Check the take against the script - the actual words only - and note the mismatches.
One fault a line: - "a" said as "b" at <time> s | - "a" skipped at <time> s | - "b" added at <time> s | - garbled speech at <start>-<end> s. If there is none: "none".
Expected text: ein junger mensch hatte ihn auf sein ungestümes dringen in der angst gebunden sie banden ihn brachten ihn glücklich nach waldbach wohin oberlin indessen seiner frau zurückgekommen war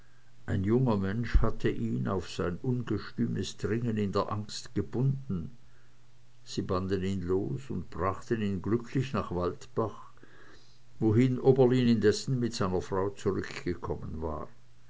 - "los und" added at 7.2 s
- "mit" added at 12.4 s